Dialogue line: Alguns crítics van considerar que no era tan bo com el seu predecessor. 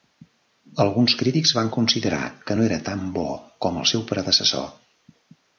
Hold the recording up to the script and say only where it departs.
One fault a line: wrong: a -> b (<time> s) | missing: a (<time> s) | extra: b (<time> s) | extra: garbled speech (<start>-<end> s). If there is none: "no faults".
no faults